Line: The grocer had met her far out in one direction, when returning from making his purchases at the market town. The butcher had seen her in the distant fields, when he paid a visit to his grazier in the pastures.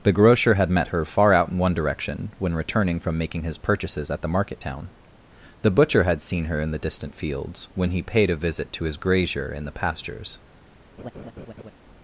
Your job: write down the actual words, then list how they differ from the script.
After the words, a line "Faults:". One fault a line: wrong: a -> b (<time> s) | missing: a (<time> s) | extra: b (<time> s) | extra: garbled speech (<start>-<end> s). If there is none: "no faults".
The grocer had met her far out in one direction, when returning from making his purchases at the market town. The butcher had seen her in the distant fields, when he paid a visit to his grazier in the pastures.
Faults:
no faults